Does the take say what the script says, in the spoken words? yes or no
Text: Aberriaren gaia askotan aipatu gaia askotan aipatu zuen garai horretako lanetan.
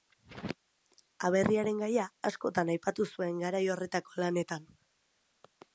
no